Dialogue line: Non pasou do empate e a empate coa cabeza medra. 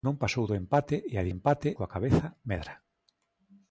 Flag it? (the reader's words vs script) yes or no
no